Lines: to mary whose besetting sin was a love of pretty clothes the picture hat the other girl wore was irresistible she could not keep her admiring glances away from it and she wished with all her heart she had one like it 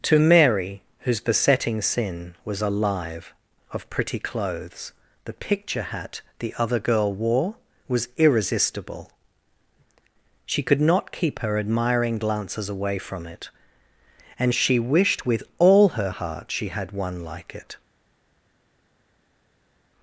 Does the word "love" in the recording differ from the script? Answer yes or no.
yes